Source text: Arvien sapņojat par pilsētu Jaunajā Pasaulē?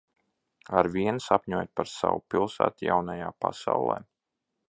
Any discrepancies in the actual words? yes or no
yes